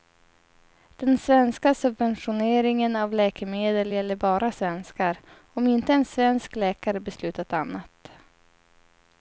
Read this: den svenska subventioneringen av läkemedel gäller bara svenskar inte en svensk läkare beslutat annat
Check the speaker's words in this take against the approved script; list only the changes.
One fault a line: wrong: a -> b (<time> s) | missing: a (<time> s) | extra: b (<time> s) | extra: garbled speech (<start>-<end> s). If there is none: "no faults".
extra: om (5.5 s)